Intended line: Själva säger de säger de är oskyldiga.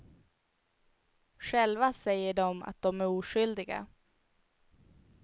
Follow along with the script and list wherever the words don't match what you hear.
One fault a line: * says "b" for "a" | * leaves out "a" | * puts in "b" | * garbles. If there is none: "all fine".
* says "att" for "säger"